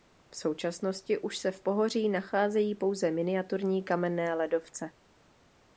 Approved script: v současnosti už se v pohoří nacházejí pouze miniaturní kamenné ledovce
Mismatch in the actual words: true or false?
false